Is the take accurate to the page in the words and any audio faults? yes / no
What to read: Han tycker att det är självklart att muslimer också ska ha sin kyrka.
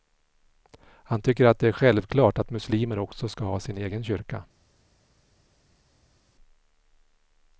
no